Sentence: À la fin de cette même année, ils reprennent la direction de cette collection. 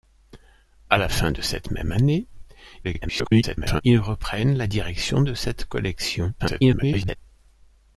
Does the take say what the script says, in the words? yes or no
no